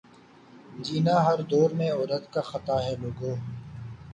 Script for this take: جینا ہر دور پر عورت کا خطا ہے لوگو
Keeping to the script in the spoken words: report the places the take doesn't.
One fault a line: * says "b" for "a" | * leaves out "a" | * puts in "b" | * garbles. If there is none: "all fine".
* says "میں" for "پر"